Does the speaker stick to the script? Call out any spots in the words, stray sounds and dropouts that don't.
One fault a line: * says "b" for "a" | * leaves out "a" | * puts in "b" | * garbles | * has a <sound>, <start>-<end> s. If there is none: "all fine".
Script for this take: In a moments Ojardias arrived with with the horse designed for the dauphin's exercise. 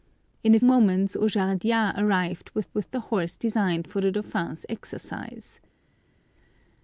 all fine